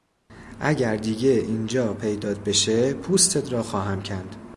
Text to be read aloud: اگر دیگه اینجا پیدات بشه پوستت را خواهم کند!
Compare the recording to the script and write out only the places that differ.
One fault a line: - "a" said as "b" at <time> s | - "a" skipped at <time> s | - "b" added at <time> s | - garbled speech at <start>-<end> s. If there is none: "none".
none